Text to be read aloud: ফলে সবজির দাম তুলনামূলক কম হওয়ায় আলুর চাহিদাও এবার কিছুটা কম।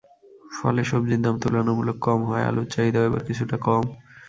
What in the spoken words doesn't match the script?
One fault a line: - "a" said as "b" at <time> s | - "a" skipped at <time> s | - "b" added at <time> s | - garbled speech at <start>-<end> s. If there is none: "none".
none